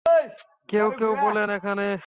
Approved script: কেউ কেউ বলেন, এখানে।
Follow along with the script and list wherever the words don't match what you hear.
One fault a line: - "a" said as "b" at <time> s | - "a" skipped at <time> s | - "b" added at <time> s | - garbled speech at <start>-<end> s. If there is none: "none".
none